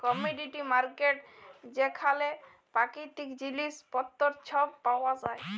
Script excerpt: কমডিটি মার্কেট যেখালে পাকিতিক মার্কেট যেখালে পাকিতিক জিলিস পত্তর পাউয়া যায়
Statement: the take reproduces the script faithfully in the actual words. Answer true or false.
false